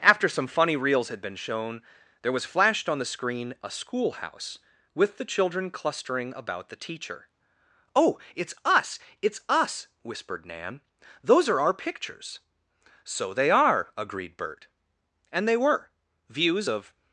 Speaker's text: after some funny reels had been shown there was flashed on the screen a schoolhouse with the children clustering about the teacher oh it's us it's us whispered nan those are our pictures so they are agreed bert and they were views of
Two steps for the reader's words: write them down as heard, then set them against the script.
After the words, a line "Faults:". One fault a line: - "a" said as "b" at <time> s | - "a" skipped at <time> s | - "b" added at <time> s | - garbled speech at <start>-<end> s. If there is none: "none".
after some funny reels had been shown there was flashed on the screen a schoolhouse with the children clustering about the teacher oh it's us it's us whispered nan those are our pictures so they are agreed bert and they were views of
Faults:
none